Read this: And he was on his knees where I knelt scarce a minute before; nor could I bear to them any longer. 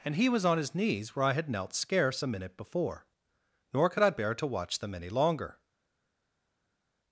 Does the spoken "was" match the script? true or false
true